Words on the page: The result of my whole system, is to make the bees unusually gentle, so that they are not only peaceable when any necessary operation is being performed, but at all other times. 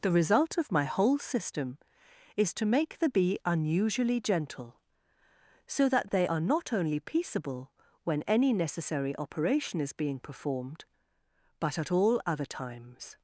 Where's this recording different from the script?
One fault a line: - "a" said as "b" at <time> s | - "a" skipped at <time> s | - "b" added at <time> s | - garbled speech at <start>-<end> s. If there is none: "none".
- "bees" said as "bee" at 3.1 s